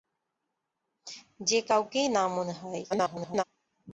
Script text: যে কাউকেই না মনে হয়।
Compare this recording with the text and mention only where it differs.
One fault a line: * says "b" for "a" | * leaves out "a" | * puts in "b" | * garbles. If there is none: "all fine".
* garbles